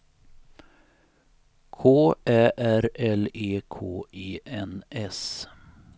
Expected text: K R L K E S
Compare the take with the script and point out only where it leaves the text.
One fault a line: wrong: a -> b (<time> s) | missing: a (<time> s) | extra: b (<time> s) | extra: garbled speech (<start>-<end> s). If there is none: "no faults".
extra: Ä (2.2 s)
extra: E (3.3 s)
extra: N (4.5 s)